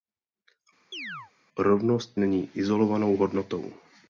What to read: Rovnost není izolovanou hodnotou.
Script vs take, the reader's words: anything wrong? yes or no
no